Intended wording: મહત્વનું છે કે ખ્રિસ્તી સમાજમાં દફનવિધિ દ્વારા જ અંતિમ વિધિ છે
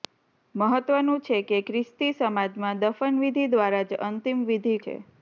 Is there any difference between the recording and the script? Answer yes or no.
no